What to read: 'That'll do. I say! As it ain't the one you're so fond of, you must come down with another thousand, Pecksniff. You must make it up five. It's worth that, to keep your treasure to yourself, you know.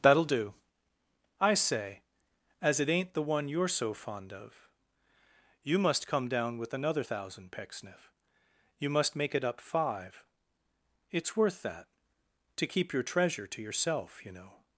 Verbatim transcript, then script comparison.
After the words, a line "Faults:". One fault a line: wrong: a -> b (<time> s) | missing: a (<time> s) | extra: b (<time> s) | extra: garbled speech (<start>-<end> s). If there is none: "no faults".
'That'll do. I say! As it ain't the one you're so fond of, you must come down with another thousand, Pecksniff. You must make it up five. It's worth that, to keep your treasure to yourself, you know.
Faults:
no faults